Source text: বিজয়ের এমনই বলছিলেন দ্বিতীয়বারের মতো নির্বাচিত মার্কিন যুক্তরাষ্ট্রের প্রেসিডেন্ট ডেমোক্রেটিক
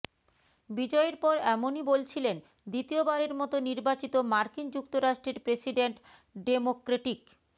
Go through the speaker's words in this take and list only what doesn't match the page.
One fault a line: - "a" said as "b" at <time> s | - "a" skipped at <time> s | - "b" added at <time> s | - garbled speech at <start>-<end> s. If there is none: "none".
- "পর" added at 1.2 s